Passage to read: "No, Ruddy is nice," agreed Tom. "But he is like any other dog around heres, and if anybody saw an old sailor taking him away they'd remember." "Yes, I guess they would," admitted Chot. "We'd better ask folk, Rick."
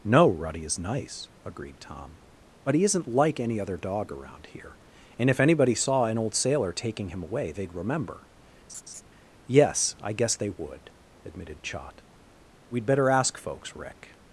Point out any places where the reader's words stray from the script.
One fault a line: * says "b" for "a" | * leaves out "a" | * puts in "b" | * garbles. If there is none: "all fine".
* says "isn't" for "is"
* says "here" for "heres"
* says "folks" for "folk"